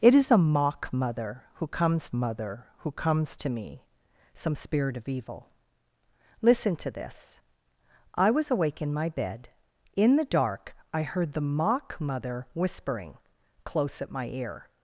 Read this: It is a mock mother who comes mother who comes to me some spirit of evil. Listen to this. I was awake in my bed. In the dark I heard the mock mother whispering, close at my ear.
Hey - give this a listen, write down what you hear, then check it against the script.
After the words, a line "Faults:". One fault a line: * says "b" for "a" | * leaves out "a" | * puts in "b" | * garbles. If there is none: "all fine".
It is a mock mother who comes mother who comes to me some spirit of evil. Listen to this. I was awake in my bed. In the dark I heard the mock mother whispering, close at my ear.
Faults:
all fine